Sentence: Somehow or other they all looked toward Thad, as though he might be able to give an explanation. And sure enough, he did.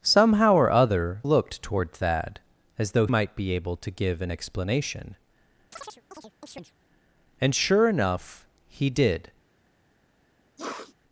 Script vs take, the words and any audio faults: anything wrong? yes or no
yes